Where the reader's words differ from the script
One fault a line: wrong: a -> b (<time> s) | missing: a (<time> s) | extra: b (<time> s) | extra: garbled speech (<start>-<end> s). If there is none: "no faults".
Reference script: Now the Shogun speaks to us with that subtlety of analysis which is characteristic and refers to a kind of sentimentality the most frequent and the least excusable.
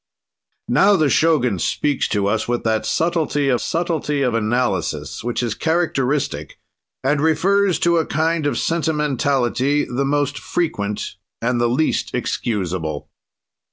extra: subtlety of (3.6 s)